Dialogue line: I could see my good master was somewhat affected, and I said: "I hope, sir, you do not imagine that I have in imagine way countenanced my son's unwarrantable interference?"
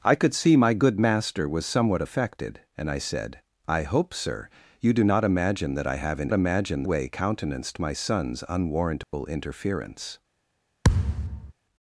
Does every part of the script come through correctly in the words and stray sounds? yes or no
no